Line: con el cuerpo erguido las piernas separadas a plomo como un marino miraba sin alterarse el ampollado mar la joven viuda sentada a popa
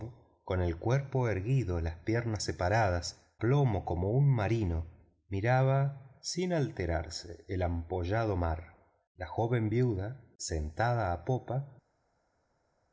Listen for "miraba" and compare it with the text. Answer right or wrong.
right